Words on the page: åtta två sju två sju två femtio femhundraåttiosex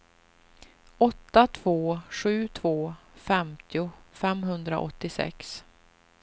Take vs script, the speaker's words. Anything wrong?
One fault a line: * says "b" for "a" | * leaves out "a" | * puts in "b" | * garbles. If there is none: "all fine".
* leaves out "sju två"